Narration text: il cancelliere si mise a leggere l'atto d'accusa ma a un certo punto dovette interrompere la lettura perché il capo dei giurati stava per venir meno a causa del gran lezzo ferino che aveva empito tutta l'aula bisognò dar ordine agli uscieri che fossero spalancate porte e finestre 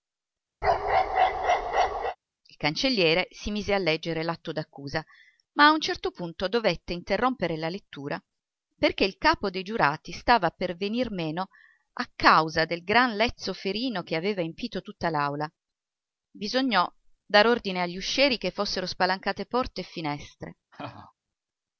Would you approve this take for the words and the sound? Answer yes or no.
no